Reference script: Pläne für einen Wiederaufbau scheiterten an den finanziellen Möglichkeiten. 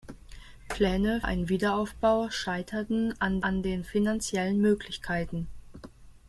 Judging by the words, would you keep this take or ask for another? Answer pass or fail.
fail